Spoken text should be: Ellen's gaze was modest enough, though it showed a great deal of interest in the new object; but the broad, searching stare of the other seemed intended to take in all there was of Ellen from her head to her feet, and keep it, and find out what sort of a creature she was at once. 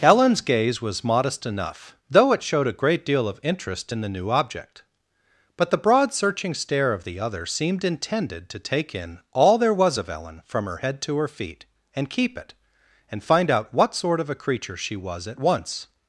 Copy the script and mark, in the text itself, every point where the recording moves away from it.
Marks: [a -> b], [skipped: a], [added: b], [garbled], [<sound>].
Ellen's gaze was modest enough, though it showed a great deal of interest in the new object; but the broad, searching stare of the other seemed intended to take in all there was of Ellen from her head to her feet, and keep it, and find out what sort of a creature she was at once.